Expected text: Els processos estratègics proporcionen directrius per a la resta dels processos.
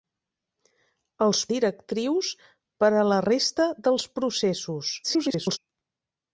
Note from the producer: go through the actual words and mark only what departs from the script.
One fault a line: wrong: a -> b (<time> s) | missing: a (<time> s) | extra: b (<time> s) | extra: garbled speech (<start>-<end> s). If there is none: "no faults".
missing: processos estratègics proporcionen (1.4 s)
extra: garbled speech (5.0-5.6 s)